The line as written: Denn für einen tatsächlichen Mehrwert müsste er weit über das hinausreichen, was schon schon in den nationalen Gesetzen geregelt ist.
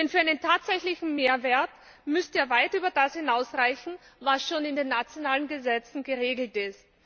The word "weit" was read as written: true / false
true